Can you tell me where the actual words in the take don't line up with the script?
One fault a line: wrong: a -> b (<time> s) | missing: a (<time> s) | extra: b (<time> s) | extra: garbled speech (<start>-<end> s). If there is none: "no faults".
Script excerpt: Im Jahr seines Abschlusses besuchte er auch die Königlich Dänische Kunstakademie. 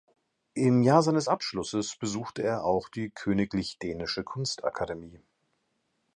no faults